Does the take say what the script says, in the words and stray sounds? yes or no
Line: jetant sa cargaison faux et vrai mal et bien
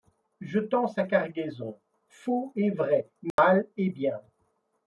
no